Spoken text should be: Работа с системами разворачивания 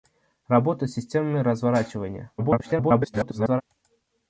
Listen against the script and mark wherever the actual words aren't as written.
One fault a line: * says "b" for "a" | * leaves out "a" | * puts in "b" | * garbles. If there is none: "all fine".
* garbles